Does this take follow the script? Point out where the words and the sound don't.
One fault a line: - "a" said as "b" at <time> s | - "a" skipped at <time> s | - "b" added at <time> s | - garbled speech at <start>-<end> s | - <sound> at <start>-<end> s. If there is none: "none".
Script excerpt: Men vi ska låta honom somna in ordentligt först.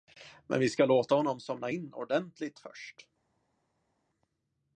none